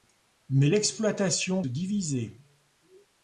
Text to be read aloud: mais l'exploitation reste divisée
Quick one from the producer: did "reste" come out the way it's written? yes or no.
no